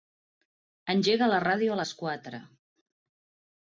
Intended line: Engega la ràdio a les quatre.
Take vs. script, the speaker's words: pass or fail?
pass